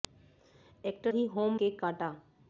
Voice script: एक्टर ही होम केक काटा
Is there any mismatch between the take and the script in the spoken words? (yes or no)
no